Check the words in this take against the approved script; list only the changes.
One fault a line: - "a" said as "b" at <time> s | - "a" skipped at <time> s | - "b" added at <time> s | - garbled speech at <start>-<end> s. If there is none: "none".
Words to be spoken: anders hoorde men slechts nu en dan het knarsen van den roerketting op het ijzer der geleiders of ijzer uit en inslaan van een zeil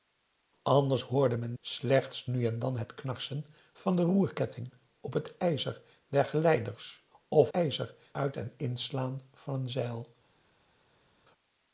none